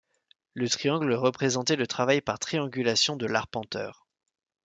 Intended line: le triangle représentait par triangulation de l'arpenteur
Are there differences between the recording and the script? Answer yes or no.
yes